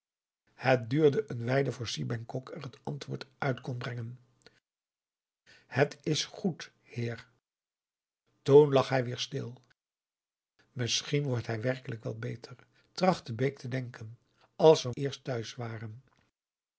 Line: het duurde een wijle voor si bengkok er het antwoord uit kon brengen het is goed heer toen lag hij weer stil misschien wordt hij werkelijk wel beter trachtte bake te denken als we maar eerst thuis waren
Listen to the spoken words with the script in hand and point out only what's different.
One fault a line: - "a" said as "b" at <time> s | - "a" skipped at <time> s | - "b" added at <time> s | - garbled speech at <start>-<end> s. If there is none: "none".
- "maar" skipped at 14.9 s